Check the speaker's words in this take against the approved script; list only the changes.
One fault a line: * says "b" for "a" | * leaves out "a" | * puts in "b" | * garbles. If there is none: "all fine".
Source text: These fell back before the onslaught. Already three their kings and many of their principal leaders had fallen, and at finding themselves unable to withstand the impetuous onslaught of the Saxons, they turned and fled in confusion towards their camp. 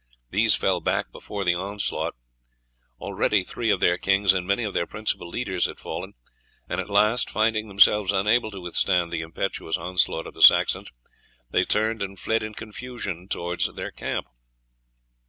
* puts in "of"
* puts in "last"